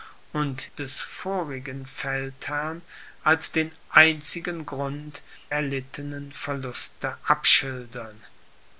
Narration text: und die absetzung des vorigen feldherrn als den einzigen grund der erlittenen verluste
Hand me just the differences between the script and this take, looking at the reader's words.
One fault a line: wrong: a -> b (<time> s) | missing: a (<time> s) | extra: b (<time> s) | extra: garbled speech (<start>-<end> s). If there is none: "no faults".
missing: die absetzung (0.7 s)
missing: der (5.2 s)